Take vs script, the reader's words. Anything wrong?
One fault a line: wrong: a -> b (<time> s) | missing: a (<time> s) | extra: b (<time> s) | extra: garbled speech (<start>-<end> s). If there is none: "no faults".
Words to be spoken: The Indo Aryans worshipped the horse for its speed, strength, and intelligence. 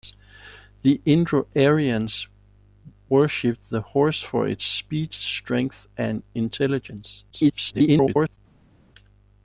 extra: garbled speech (7.3-8.4 s)